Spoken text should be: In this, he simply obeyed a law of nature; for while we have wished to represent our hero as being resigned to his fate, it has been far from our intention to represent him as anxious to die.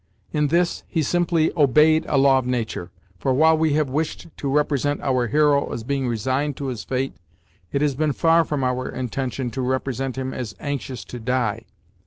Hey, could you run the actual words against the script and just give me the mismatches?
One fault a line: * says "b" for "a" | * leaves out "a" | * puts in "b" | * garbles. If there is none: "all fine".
all fine